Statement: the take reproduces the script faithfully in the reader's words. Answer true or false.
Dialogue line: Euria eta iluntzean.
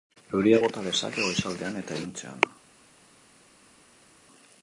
false